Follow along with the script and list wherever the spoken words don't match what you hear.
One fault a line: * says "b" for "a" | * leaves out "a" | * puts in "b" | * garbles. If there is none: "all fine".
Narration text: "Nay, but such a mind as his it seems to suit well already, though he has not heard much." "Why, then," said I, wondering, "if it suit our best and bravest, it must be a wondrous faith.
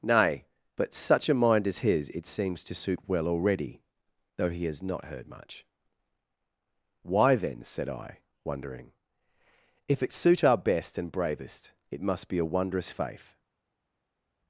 all fine